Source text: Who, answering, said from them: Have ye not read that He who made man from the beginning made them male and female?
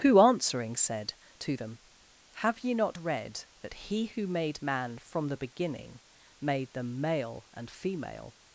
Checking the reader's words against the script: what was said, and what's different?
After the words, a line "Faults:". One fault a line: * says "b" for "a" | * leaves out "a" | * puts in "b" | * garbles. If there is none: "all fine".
Who, answering, said to them: Have ye not read that He who made man from the beginning made them male and female?
Faults:
* says "to" for "from"